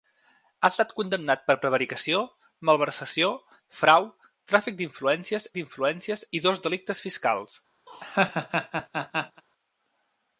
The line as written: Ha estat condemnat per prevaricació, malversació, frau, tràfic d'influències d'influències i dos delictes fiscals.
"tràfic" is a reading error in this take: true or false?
false